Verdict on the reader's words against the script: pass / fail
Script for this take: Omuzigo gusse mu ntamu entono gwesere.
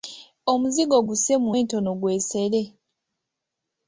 fail